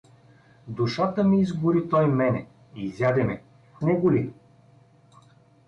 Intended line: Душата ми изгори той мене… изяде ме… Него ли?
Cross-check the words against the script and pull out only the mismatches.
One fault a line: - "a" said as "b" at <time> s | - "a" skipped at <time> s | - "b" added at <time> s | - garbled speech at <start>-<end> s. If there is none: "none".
none